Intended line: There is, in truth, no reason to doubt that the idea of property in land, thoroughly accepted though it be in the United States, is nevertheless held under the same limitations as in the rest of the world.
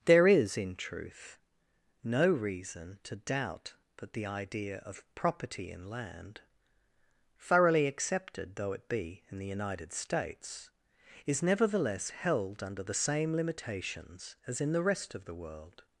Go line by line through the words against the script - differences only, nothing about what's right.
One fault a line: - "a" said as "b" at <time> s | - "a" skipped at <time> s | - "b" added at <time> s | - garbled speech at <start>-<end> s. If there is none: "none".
none